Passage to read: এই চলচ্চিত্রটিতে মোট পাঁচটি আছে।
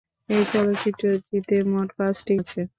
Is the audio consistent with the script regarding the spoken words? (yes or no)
yes